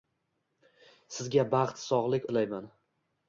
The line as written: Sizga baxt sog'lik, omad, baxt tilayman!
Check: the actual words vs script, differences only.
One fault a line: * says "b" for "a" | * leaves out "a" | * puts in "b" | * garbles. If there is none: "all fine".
* leaves out "omad baxt"